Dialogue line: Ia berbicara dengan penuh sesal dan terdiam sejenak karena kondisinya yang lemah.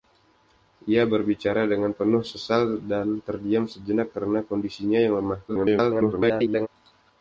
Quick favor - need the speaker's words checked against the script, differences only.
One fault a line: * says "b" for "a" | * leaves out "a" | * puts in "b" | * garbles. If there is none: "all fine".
* garbles